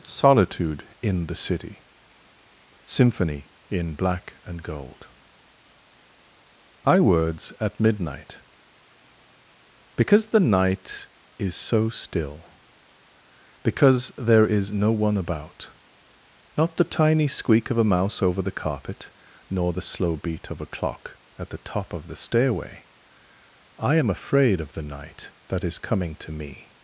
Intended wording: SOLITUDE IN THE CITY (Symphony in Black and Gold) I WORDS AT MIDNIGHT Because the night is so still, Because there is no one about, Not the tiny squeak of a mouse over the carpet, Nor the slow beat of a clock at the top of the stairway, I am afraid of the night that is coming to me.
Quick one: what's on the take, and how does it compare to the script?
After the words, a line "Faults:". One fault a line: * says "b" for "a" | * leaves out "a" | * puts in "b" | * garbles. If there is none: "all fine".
SOLITUDE IN THE CITY (Symphony in Black and Gold) I WORDS AT MIDNIGHT Because the night is so still, Because there is no one about, Not the tiny squeak of a mouse over the carpet, Nor the slow beat of a clock at the top of the stairway, I am afraid of the night that is coming to me.
Faults:
all fine